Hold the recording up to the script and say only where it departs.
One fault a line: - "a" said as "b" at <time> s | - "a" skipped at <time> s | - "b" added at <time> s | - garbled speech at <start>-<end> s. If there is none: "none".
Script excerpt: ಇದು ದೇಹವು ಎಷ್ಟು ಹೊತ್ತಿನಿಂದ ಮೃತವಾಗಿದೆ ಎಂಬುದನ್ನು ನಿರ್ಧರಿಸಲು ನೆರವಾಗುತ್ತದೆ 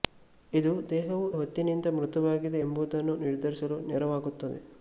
- "ಎಷ್ಟು" skipped at 1.3 s